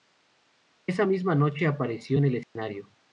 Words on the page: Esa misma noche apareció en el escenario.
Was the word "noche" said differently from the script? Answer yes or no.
no